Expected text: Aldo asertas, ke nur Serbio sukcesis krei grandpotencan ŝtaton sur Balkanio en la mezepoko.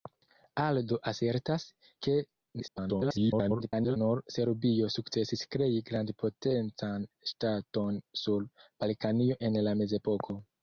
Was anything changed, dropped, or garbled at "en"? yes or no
no